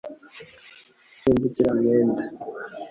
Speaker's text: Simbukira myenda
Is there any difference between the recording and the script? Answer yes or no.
no